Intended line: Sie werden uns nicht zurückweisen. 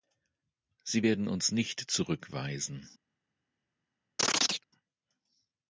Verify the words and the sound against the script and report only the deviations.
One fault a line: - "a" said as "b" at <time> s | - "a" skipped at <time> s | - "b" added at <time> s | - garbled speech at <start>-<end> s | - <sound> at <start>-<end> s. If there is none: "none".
- chirp at 4.2-4.6 s